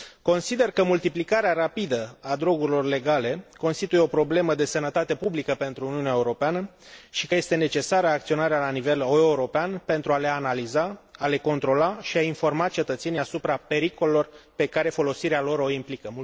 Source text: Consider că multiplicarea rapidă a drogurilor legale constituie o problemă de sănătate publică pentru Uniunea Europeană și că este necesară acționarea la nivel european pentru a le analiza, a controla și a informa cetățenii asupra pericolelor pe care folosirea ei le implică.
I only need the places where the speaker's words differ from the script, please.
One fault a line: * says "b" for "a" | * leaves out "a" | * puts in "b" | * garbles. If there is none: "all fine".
* puts in "le"
* says "lor" for "ei"